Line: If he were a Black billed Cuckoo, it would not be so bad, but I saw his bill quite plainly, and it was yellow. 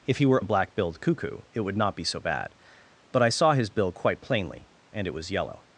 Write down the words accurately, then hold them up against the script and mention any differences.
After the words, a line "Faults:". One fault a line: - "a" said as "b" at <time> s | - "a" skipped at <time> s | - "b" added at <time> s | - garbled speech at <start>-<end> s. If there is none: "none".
If he were a Black billed Cuckoo, it would not be so bad, but I saw his bill quite plainly, and it was yellow.
Faults:
none